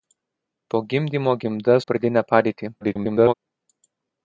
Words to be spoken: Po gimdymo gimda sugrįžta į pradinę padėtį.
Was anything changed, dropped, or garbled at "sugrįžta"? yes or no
yes